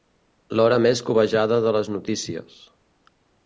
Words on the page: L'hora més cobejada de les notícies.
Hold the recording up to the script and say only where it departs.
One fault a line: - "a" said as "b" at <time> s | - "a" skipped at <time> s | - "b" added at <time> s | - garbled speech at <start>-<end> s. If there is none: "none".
none